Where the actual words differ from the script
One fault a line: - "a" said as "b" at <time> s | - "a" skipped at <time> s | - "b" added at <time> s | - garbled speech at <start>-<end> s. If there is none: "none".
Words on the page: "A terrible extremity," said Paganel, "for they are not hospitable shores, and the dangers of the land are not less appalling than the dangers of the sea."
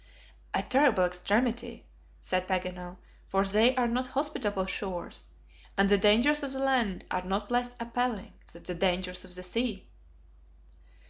none